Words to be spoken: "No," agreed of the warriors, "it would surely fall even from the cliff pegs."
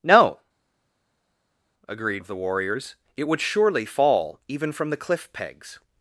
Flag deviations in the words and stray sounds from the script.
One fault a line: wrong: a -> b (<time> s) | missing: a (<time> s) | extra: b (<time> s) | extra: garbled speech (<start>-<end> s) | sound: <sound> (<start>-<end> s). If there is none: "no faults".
no faults